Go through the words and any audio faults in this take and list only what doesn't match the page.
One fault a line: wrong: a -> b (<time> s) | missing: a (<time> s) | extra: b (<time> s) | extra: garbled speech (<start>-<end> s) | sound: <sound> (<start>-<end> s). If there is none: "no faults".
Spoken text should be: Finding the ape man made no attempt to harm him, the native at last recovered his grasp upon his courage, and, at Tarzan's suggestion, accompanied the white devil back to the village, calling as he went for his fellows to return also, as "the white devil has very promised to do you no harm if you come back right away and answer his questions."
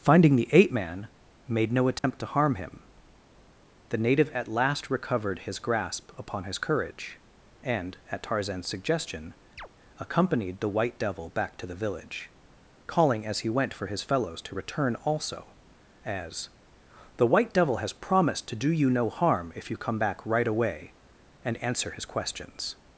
sound: dropout (2.0-2.0 s)
sound: chirp (9.6-9.7 s)
missing: very (17.9 s)